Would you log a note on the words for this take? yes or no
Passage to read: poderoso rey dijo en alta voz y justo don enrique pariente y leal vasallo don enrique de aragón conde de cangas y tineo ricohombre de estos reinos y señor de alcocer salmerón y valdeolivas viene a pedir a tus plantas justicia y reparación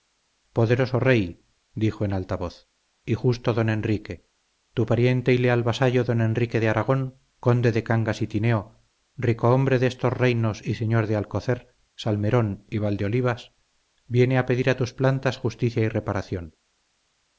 yes